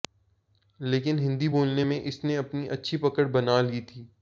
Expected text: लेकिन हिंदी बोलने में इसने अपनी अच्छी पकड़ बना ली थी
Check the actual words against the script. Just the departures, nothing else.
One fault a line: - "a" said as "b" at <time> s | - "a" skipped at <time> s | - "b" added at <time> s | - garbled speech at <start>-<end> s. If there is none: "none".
none